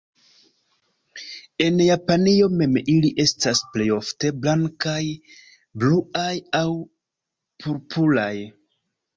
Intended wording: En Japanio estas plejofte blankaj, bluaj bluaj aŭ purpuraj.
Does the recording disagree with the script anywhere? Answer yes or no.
yes